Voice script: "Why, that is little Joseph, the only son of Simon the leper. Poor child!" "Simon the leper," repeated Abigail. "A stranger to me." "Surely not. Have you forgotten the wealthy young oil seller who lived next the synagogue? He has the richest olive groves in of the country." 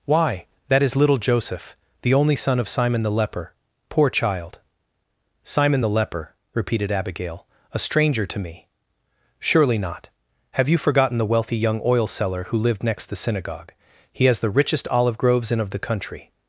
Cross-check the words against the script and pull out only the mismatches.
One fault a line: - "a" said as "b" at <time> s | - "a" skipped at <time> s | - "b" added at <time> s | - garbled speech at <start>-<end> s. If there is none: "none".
none